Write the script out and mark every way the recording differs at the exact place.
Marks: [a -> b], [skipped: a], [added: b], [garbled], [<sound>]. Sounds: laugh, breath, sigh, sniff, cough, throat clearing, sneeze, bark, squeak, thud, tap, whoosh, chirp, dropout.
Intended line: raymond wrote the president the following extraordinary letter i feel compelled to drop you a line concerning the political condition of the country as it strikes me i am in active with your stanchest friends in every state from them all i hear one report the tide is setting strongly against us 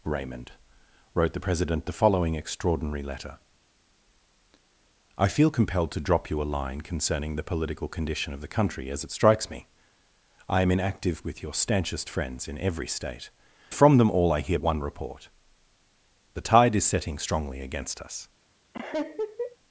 raymond wrote the president the following extraordinary letter i feel compelled to drop you a line concerning the political condition of the country as it strikes me i am in active with your stanchest friends in every state from them all i hear one report the tide is setting strongly against us [laugh]